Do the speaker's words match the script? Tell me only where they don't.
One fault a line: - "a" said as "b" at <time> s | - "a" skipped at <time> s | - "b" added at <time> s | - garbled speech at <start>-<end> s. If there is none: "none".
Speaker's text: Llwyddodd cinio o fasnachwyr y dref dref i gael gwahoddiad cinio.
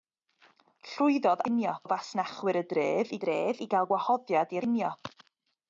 none